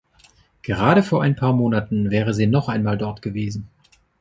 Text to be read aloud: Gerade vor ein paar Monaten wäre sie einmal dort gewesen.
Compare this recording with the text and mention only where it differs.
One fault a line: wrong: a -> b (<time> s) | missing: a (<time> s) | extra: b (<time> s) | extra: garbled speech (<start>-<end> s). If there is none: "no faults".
extra: noch (2.5 s)